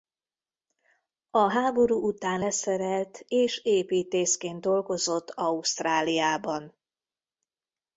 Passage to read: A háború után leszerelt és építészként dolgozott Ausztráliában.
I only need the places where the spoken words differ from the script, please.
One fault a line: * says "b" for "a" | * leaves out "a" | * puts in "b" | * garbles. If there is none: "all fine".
all fine